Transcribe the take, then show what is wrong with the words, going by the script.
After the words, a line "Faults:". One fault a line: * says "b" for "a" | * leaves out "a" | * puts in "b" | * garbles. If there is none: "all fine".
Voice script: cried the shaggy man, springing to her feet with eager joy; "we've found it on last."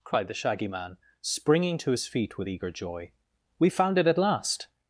cried the shaggy man, springing to his feet with eager joy; "we've found it at last."
Faults:
* says "his" for "her"
* says "at" for "on"